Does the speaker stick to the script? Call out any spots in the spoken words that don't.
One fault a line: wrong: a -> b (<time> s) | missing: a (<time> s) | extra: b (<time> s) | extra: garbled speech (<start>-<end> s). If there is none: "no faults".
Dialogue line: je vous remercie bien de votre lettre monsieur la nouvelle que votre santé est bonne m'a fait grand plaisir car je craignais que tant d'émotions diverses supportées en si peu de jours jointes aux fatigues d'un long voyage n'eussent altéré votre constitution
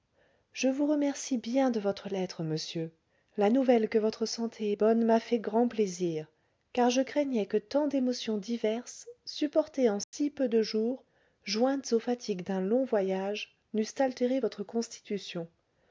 no faults